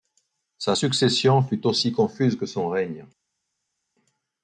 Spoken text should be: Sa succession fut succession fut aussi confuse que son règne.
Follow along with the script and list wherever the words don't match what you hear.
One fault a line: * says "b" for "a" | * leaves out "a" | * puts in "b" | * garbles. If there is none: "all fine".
* leaves out "succession fut"